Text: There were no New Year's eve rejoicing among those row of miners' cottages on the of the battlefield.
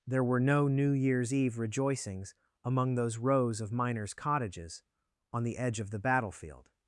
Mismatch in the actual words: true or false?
true